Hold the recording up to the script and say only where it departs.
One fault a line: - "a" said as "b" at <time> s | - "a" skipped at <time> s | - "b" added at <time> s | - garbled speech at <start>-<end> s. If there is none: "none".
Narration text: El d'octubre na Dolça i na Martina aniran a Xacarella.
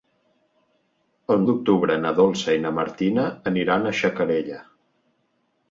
none